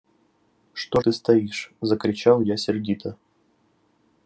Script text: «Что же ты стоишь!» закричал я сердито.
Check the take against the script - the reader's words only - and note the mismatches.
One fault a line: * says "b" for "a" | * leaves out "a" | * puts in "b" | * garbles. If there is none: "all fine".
* leaves out "же"